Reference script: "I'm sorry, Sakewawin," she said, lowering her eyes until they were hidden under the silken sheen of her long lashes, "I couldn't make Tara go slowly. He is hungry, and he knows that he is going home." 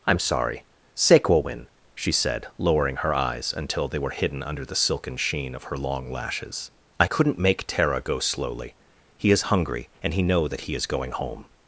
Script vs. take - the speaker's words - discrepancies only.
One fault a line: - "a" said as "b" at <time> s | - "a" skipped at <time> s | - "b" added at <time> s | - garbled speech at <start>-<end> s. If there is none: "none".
- "knows" said as "know" at 10.2 s